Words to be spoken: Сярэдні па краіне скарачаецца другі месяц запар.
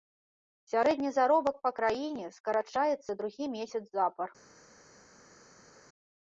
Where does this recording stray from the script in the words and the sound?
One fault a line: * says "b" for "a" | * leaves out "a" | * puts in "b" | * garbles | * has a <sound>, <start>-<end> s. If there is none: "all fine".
* puts in "заробак"